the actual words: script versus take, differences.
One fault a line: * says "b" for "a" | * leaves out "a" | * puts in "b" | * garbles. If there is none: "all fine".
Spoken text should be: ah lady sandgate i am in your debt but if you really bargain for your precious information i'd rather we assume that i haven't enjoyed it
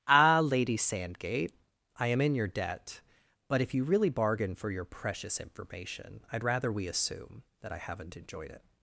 all fine